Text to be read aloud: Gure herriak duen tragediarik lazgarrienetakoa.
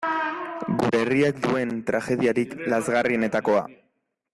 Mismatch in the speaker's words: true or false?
false